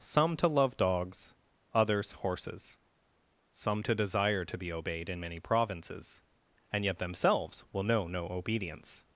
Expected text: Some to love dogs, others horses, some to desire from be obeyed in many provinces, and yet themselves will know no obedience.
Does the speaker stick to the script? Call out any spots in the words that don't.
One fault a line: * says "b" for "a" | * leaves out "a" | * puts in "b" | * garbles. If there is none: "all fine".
* says "to" for "from"